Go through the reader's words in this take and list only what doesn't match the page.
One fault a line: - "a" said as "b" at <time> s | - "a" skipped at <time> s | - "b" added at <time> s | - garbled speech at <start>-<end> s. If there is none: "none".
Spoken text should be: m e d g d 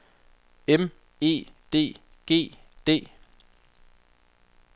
none